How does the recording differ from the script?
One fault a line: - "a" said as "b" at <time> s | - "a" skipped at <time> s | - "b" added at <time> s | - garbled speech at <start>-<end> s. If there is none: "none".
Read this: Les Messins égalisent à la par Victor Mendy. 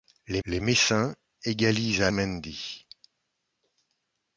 - "les" added at 0.4 s
- "la par Victor" skipped at 2.1 s